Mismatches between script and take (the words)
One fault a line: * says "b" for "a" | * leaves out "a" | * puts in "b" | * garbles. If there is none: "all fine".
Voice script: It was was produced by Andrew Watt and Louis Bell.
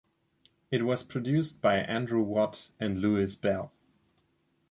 * leaves out "was"